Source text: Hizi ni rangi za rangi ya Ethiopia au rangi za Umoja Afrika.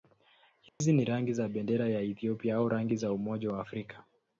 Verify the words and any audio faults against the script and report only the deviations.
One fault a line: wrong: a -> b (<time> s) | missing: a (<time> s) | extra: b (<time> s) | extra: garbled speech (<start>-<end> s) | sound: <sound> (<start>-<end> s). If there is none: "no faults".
sound: dropout (0.7-0.8 s)
wrong: rangi -> bendera (1.5 s)
extra: wa (3.5 s)